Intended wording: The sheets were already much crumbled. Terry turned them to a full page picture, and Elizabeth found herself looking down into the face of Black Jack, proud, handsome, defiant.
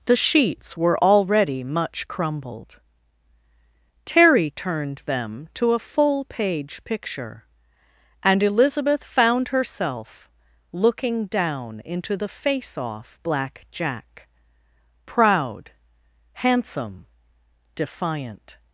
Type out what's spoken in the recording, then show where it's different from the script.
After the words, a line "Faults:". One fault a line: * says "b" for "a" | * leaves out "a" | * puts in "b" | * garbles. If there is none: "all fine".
The sheets were already much crumbled. Terry turned them to a full page picture, and Elizabeth found herself looking down into the face off Black Jack, proud, handsome, defiant.
Faults:
* says "off" for "of"